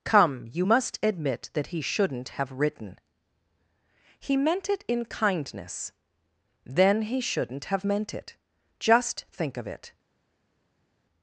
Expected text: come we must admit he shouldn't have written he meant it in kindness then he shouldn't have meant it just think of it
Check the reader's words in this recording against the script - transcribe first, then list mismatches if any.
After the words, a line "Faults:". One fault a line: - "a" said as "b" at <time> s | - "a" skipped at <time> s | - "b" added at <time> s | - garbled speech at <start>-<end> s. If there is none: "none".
come you must admit that he shouldn't have written he meant it in kindness then he shouldn't have meant it just think of it
Faults:
- "we" said as "you" at 0.5 s
- "that" added at 1.5 s